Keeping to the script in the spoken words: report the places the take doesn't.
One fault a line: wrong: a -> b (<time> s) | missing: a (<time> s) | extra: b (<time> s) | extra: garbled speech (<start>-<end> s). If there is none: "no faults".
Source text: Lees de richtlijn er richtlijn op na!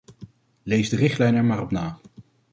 wrong: richtlijn -> maar (1.4 s)